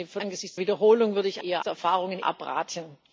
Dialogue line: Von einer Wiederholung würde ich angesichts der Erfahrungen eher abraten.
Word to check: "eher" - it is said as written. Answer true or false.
false